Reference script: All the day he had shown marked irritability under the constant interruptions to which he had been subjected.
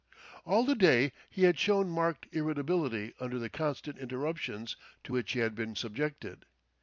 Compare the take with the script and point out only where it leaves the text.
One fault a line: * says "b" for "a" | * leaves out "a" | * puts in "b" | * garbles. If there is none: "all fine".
all fine